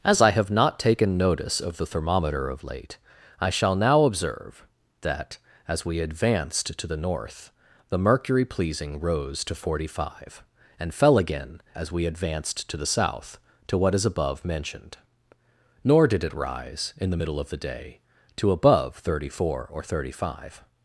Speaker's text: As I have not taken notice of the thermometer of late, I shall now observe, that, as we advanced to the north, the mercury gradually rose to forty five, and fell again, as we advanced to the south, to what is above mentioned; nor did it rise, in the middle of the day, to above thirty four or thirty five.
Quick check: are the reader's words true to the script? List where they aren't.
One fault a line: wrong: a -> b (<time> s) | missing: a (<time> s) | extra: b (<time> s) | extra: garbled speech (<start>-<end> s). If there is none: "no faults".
wrong: gradually -> pleasing (8.4 s)